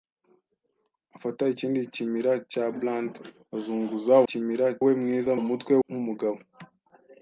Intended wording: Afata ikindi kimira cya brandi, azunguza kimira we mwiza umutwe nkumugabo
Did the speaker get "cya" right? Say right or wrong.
right